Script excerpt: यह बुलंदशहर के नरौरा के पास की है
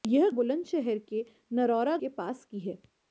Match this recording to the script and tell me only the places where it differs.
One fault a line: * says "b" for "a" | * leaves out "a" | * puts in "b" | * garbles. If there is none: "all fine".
all fine